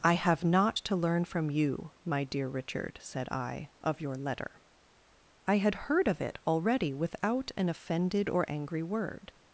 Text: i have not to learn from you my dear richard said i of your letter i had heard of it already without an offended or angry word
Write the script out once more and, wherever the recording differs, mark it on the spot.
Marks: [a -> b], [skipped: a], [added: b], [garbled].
i have not to learn from you my dear richard said i of your letter i had heard of it already without an offended or angry word